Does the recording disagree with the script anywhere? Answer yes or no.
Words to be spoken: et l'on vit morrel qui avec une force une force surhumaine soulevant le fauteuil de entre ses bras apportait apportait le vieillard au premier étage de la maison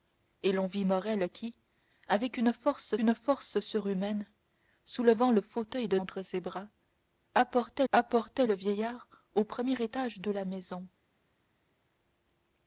no